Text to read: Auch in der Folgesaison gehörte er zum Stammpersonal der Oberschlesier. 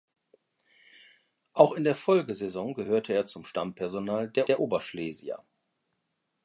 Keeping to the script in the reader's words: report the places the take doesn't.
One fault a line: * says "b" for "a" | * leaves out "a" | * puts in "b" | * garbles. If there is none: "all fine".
* puts in "der"